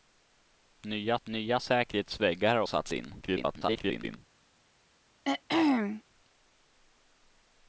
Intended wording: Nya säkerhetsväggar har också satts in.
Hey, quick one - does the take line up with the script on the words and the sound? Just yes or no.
no